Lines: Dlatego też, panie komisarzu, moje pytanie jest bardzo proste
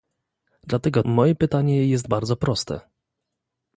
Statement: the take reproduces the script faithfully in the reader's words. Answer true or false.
false